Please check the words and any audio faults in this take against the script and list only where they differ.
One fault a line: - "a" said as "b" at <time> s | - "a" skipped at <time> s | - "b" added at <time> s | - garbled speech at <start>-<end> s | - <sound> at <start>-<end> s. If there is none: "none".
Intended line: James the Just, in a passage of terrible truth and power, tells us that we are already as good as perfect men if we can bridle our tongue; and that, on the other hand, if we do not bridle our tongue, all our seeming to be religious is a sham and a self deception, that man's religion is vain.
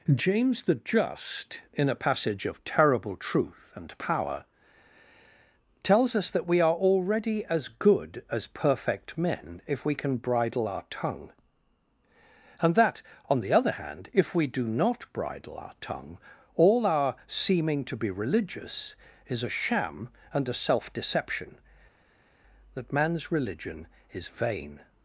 none